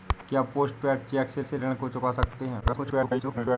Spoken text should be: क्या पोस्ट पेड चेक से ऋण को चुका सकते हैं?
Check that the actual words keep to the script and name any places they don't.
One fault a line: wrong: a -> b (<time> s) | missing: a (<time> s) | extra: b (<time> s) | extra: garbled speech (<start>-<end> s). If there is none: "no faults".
extra: से (1.4 s)
extra: garbled speech (2.6-3.6 s)